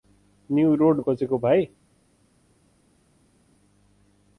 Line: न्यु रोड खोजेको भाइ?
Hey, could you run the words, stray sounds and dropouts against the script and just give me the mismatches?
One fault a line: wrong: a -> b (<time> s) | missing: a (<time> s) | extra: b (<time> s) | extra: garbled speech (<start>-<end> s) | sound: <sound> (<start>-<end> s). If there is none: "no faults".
no faults